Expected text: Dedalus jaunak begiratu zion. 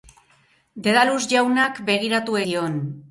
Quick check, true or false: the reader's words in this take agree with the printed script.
true